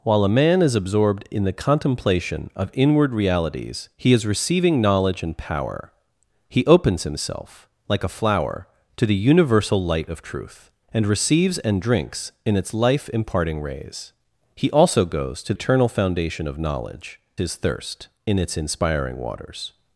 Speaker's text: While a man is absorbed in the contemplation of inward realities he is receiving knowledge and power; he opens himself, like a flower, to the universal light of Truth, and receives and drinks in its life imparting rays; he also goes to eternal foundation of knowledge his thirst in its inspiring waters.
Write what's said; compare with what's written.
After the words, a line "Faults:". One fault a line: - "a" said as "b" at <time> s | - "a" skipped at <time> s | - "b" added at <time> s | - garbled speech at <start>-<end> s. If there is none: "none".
While a man is absorbed in the contemplation of inward realities he is receiving knowledge and power; he opens himself, like a flower, to the universal light of Truth, and receives and drinks in its life imparting rays; he also goes to eternal foundation of knowledge his thirst in its inspiring waters.
Faults:
none